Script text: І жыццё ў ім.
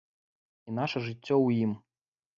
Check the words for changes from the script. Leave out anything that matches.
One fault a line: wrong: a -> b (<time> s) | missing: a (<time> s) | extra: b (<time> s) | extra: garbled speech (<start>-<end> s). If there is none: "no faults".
extra: наша (0.8 s)